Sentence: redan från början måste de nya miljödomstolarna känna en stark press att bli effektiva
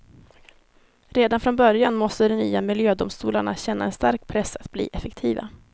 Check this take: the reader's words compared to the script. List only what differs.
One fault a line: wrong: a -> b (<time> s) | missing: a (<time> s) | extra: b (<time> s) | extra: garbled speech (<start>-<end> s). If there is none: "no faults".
no faults